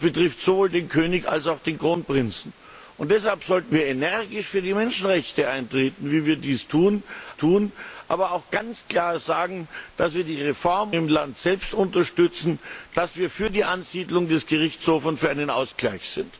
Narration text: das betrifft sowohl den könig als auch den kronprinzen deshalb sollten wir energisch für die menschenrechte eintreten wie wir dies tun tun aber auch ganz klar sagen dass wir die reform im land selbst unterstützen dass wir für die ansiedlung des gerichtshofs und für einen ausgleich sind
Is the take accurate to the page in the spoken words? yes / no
yes